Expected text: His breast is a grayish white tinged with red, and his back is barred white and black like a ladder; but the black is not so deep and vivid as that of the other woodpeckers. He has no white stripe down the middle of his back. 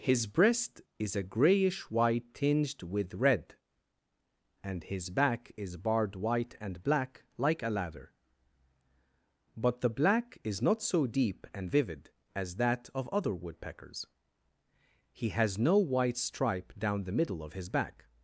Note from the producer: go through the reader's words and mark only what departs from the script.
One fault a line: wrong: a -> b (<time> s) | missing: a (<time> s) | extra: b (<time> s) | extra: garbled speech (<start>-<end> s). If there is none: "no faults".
missing: the (13.1 s)